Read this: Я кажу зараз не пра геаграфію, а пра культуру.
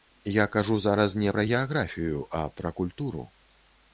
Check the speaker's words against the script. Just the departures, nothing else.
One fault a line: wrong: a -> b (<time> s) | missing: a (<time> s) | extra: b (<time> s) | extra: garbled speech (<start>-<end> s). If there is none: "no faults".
no faults